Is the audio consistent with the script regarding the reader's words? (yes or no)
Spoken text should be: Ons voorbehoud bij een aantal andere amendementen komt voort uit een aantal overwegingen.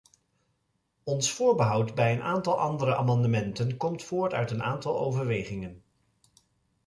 yes